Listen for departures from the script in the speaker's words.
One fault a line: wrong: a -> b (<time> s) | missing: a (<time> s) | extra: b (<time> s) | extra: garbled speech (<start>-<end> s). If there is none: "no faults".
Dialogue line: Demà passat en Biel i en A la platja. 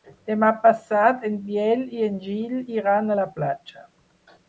extra: Gil iran (2.2 s)